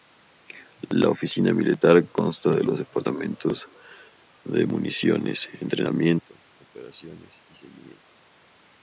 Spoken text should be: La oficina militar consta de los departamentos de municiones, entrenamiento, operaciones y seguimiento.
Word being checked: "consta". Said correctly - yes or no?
yes